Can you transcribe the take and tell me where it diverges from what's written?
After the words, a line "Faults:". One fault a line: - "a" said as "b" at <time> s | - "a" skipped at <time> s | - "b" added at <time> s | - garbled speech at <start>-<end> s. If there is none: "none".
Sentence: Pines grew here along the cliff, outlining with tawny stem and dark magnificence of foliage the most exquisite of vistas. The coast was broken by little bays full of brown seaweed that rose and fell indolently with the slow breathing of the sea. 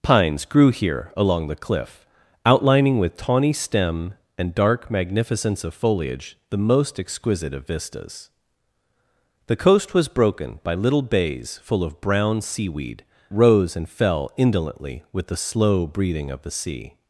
Pines grew here along the cliff, outlining with tawny stem and dark magnificence of foliage the most exquisite of vistas. The coast was broken by little bays full of brown seaweed rose and fell indolently with the slow breathing of the sea.
Faults:
- "that" skipped at 13.1 s